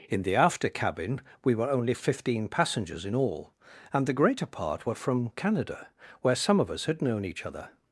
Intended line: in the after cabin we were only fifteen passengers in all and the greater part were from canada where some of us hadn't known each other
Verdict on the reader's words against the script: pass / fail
fail